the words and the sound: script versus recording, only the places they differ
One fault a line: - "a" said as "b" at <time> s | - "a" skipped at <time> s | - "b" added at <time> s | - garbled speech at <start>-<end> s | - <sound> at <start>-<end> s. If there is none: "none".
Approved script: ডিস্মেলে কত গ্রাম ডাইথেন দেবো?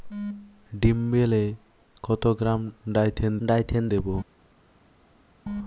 - "ডাইথেন" added at 3.5 s